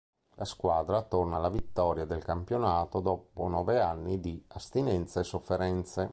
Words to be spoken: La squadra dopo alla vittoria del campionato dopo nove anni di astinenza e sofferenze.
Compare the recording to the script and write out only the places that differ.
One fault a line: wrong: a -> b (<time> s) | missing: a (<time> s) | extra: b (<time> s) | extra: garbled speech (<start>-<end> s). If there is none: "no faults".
wrong: dopo -> torna (1.0 s)